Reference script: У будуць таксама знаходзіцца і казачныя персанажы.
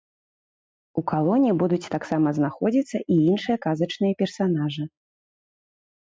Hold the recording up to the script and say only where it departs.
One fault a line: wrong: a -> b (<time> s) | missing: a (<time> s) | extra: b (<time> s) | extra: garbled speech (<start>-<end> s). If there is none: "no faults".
extra: калоне (1.1 s)
extra: іншыя (3.3 s)